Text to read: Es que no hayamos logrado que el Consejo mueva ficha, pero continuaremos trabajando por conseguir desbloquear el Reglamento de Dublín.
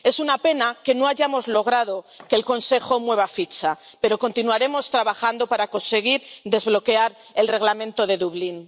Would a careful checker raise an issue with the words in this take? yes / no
yes